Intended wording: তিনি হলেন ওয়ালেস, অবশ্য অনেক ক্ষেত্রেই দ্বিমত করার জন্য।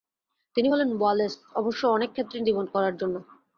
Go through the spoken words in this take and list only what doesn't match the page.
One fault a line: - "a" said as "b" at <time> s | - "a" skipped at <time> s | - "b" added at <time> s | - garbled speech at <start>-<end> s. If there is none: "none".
none